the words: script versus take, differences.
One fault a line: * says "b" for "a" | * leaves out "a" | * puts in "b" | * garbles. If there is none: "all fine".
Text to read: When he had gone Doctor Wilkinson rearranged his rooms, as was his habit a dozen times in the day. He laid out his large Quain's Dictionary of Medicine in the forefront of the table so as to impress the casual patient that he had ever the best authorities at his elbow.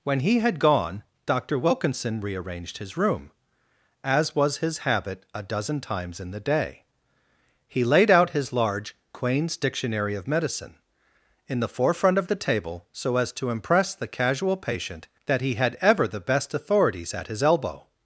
* says "room" for "rooms"